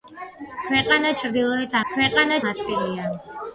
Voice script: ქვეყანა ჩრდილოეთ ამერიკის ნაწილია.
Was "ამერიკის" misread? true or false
true